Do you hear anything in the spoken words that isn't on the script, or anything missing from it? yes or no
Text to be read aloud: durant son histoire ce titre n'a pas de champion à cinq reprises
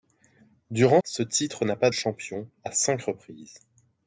yes